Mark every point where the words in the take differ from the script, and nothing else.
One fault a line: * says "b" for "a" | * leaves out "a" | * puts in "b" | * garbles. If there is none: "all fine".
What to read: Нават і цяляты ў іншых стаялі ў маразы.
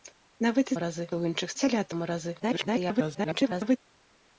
* says "маразы" for "цяляты"
* says "цяляты" for "стаялі"
* garbles